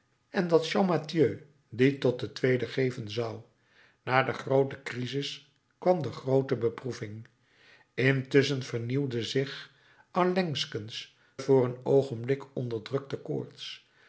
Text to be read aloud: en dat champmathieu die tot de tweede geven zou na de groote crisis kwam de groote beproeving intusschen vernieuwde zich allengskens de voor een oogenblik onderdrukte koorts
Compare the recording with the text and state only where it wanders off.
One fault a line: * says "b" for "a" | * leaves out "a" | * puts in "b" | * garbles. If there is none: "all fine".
* leaves out "de"